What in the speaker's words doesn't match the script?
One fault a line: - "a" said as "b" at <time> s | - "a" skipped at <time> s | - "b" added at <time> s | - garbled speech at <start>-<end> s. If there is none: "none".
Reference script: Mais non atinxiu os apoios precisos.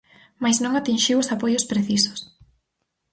none